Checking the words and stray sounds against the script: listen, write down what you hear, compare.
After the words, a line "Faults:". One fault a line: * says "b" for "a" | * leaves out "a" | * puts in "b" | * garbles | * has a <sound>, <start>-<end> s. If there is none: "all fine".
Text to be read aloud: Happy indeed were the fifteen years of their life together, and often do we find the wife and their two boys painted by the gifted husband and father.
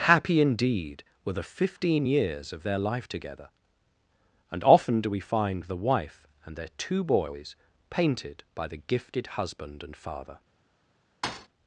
Happy indeed were the fifteen years of their life together, and often do we find the wife and their two boys painted by the gifted husband and father.
Faults:
* has a thud, 11.2-11.5 s